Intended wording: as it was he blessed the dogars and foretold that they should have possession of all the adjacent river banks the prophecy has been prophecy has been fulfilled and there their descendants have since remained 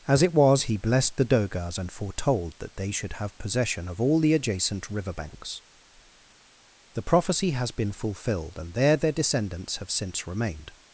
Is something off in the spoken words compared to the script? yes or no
yes